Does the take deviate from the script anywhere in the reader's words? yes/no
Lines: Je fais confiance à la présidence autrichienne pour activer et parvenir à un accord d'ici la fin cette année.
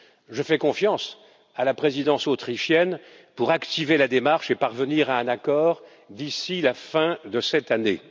yes